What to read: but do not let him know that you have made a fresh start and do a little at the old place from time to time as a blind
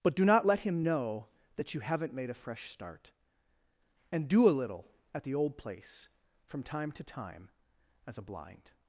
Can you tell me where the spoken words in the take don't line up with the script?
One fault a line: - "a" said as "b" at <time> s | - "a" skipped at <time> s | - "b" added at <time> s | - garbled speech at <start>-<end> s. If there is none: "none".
- "have" said as "haven't" at 1.8 s